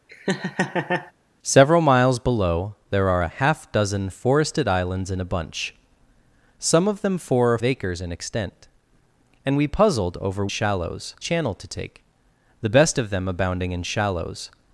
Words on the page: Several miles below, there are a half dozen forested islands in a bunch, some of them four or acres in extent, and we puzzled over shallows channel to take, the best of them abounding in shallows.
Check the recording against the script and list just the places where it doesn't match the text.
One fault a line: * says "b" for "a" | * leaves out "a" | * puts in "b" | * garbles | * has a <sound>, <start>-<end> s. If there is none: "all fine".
* has a laugh, 0.1-1.1 s